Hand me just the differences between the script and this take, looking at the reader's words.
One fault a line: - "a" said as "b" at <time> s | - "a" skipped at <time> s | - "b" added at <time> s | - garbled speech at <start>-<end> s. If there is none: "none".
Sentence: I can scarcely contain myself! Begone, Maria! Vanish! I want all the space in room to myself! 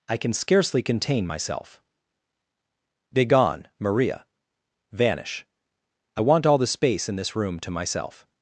- "this" added at 7.2 s